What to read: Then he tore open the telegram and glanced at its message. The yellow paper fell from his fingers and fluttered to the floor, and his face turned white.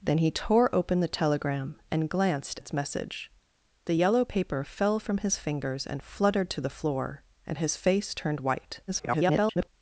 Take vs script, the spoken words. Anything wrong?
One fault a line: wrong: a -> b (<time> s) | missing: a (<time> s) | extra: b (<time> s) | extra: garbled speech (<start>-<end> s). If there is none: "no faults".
missing: at (2.6 s)
extra: garbled speech (8.9-9.7 s)